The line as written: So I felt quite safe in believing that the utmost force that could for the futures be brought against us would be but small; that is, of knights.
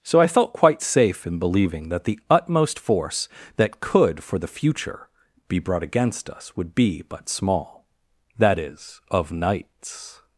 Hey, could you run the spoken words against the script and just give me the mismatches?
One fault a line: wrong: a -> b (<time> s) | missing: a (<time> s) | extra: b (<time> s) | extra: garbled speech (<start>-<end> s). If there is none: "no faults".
wrong: futures -> future (4.5 s)